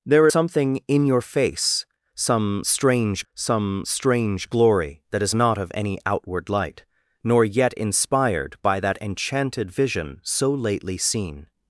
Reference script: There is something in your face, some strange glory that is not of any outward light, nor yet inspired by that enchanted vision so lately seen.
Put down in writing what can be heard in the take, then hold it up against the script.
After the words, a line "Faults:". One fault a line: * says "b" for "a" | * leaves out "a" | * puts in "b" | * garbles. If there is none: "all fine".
There something in your face, some strange some strange glory that is not of any outward light, nor yet inspired by that enchanted vision so lately seen.
Faults:
* leaves out "is"
* puts in "some strange"